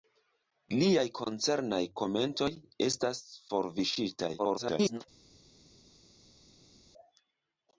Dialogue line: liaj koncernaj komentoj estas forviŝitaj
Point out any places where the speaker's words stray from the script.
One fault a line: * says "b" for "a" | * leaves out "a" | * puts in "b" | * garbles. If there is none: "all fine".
* garbles